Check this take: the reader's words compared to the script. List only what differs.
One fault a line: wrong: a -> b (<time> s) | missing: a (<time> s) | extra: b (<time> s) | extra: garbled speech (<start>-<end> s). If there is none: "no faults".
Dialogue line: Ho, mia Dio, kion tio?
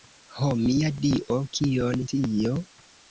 no faults